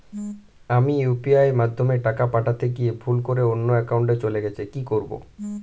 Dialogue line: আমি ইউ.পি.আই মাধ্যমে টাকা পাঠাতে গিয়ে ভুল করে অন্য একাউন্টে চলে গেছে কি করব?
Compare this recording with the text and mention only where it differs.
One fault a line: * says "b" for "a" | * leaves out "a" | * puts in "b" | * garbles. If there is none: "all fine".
all fine